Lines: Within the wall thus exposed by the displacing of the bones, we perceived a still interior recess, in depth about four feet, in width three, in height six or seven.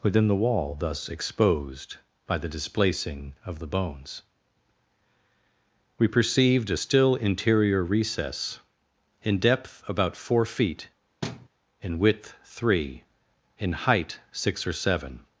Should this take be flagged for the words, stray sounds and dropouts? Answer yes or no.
yes